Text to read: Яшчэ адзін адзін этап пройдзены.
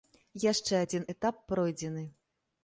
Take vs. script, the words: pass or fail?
fail